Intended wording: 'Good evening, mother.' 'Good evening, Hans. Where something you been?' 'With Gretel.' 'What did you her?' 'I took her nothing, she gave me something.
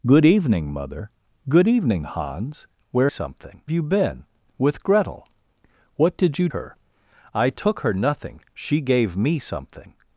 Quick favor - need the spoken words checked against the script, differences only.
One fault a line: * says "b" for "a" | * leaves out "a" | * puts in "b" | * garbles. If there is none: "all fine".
all fine